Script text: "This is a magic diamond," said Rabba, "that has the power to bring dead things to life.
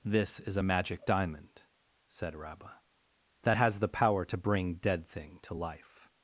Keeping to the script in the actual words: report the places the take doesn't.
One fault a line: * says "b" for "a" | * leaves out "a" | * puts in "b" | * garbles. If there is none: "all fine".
* says "thing" for "things"